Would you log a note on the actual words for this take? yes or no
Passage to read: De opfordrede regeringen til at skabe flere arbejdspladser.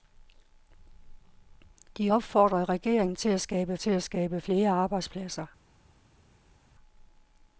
yes